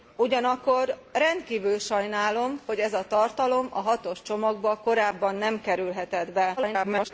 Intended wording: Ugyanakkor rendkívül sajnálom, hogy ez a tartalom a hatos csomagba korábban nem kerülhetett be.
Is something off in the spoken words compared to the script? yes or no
yes